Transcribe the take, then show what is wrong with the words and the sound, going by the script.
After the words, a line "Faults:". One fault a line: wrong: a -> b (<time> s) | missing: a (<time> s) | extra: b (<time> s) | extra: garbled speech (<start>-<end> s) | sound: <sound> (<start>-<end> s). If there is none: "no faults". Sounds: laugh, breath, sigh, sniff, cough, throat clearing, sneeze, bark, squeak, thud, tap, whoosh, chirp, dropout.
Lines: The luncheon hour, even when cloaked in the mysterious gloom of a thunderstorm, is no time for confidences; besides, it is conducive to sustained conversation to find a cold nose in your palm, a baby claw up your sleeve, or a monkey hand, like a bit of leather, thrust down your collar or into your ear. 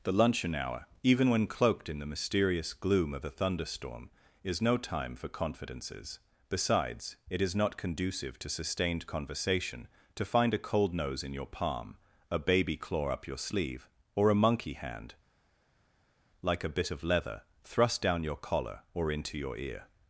The luncheon hour, even when cloaked in the mysterious gloom of a thunderstorm, is no time for confidences; besides, it is not conducive to sustained conversation to find a cold nose in your palm, a baby claw up your sleeve, or a monkey hand, like a bit of leather, thrust down your collar or into your ear.
Faults:
extra: not (7.5 s)